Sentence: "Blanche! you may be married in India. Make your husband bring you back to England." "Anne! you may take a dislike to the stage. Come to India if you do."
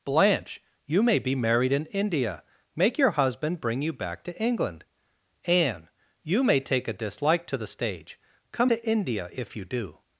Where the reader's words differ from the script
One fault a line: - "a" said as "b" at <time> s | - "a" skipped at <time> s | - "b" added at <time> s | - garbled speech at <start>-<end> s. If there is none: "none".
none